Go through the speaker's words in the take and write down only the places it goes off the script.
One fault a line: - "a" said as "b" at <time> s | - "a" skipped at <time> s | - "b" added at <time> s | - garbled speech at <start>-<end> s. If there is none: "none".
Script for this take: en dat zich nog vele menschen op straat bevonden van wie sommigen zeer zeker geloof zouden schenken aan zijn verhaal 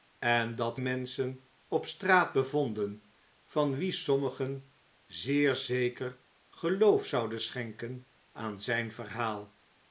- "zich nog vele" skipped at 0.8 s